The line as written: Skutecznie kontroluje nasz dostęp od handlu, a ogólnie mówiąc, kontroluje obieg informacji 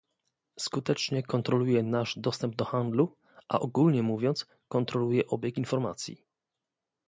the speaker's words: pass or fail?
fail